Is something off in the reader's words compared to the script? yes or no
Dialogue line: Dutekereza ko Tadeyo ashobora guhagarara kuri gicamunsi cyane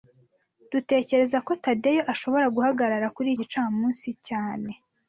no